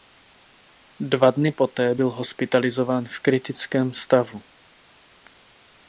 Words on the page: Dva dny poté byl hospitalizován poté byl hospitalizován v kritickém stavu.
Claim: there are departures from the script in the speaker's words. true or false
true